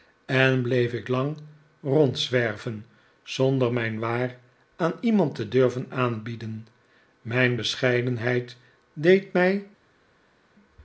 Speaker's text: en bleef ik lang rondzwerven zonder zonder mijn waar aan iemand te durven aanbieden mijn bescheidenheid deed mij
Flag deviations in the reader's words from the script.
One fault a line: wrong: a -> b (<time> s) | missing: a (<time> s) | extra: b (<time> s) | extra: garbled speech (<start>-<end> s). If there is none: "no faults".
missing: zonder (3.7 s)